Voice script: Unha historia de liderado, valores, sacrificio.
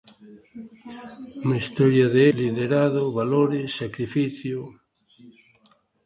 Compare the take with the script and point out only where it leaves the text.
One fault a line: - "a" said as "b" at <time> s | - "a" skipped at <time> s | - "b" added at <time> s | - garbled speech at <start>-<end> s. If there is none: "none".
none